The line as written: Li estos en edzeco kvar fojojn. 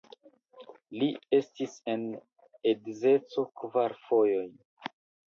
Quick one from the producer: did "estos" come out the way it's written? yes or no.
no